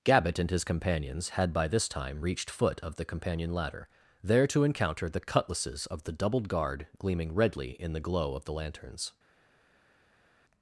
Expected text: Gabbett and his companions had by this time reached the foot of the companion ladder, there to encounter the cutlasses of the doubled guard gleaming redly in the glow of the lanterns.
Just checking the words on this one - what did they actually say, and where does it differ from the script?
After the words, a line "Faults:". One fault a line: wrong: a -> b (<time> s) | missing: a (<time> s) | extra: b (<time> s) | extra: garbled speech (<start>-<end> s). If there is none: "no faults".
Gabbett and his companions had by this time reached foot of the companion ladder, there to encounter the cutlasses of the doubled guard gleaming redly in the glow of the lanterns.
Faults:
missing: the (2.5 s)